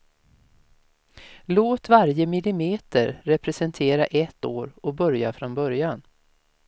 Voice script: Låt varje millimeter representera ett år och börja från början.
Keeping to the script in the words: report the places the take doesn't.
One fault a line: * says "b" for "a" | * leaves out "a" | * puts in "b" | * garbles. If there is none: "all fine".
all fine